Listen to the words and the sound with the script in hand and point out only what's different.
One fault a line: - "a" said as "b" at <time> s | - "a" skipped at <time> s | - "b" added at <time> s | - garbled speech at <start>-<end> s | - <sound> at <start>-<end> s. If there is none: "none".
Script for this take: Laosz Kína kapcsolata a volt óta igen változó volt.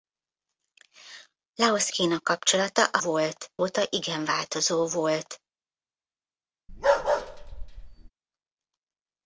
- bark at 6.7-8.1 s